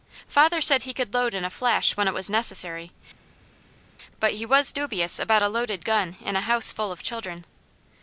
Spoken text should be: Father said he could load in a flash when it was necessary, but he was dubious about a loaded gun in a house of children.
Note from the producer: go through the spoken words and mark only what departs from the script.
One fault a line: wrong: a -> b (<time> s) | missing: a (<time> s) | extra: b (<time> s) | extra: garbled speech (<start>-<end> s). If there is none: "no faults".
extra: full (6.7 s)